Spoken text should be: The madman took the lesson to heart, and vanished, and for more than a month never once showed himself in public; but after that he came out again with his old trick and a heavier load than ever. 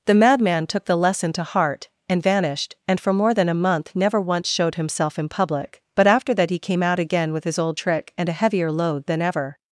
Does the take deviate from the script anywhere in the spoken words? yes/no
no